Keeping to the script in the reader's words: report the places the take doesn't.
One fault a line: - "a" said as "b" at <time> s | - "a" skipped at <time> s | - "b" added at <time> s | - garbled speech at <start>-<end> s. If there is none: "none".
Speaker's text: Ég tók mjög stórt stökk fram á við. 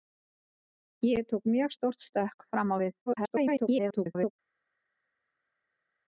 - garbled speech at 3.1-4.3 s